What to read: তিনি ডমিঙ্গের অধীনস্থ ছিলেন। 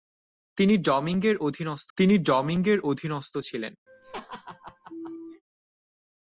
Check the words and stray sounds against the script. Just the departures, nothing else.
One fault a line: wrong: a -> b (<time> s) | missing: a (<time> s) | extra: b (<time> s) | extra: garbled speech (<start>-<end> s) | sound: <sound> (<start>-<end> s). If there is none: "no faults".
extra: তিনি ডমিঙ্গের অধীনস্থ (2.0 s)
sound: laugh (3.9-5.4 s)